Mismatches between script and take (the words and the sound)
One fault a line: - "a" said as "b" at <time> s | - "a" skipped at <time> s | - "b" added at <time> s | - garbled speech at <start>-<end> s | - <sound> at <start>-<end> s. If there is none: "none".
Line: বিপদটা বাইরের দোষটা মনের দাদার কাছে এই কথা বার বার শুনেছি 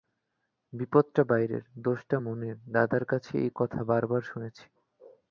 none